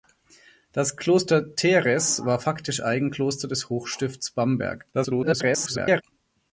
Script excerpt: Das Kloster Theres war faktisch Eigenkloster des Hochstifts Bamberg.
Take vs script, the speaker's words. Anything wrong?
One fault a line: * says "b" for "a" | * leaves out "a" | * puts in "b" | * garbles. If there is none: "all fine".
* garbles